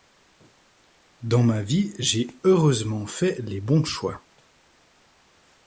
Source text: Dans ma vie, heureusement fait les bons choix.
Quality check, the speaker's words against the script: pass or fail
fail